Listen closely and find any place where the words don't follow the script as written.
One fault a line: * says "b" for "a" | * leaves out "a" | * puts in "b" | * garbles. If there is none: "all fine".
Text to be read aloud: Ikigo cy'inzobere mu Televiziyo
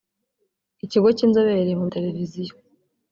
all fine